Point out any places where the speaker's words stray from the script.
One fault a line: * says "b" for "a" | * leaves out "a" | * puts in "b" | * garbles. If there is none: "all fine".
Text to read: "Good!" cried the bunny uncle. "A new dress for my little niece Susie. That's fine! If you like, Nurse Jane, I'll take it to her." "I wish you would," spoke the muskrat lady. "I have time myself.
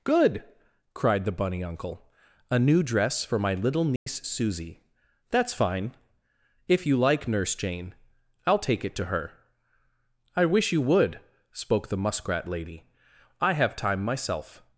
all fine